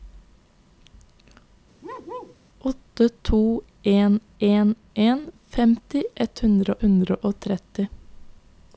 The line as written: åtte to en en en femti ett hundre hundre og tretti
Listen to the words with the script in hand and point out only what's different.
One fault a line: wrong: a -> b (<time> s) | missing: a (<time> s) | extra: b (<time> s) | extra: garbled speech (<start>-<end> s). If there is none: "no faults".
no faults